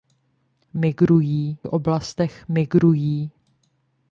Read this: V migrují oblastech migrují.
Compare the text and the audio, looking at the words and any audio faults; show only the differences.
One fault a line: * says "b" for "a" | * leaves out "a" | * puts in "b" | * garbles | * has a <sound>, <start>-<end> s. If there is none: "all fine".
all fine